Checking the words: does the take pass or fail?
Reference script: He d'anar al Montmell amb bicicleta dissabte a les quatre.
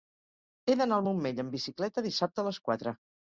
pass